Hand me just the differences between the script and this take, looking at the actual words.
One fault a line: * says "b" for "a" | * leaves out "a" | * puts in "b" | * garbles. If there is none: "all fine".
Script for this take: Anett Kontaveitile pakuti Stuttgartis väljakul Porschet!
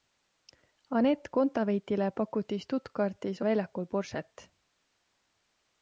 all fine